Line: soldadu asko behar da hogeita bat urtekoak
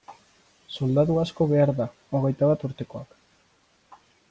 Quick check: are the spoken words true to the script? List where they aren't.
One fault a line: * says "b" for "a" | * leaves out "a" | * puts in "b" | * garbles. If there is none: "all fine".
all fine